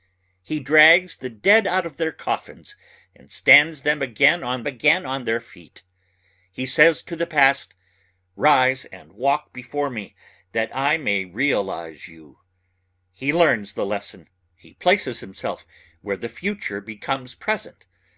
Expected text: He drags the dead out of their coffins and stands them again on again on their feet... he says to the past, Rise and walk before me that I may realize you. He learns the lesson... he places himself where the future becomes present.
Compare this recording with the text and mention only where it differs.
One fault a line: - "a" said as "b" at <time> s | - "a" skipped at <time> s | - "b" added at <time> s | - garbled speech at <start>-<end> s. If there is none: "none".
none